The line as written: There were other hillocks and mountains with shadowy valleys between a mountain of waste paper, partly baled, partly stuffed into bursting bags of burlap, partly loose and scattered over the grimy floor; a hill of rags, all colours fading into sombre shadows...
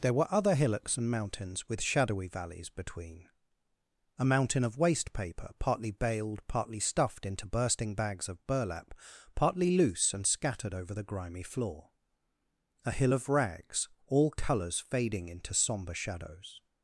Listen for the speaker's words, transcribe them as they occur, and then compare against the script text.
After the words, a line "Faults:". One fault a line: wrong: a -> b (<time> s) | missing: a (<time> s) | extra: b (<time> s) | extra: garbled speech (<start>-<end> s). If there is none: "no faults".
There were other hillocks and mountains with shadowy valleys between a mountain of waste paper, partly baled, partly stuffed into bursting bags of burlap, partly loose and scattered over the grimy floor; a hill of rags, all colours fading into sombre shadows...
Faults:
no faults